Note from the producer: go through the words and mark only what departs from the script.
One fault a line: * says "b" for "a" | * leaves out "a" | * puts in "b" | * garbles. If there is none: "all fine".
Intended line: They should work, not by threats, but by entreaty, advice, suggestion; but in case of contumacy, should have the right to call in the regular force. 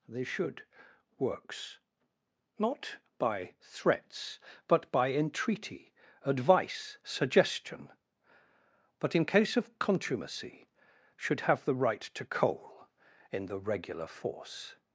* says "works" for "work"
* says "coal" for "call"